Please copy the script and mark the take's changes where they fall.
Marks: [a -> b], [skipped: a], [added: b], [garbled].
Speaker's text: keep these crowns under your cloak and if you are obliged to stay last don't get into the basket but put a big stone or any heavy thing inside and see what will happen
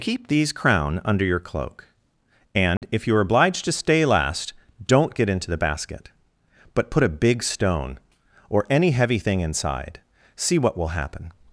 keep these [crowns -> crown] under your cloak and if you are obliged to stay last don't get into the basket but put a big stone or any heavy thing inside [skipped: and] see what will happen